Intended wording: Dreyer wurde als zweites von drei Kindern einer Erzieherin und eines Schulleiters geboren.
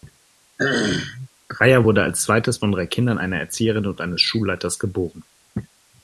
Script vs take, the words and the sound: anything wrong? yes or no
yes